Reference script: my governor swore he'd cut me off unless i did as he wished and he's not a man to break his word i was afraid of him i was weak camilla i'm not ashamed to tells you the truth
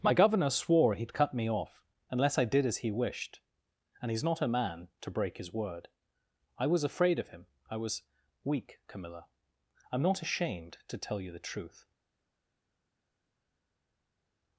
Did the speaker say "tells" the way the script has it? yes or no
no